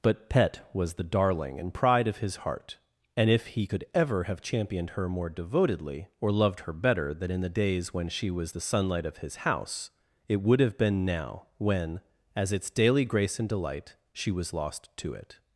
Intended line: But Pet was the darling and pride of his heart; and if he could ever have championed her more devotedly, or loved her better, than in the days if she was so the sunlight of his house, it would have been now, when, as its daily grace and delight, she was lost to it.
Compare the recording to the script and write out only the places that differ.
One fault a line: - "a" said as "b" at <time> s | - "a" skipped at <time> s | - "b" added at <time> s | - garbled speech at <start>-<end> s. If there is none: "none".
- "if" said as "when" at 7.9 s
- "so" skipped at 8.5 s